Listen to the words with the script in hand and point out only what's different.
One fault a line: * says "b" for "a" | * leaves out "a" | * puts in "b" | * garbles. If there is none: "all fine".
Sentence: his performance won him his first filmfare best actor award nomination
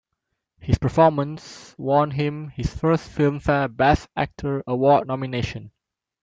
all fine